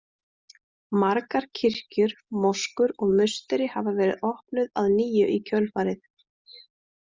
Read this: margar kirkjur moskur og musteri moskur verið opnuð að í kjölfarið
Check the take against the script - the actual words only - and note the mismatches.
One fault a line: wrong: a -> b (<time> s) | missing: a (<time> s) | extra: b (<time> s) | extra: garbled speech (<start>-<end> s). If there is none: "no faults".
wrong: moskur -> hafa (3.8 s)
extra: nýju (5.0 s)